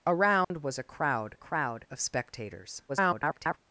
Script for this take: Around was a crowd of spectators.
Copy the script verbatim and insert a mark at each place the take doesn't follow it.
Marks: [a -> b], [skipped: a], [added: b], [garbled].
Around was a crowd [added: crowd] of spectators. [garbled]